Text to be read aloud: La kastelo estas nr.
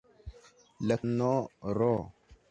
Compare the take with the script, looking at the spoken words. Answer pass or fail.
fail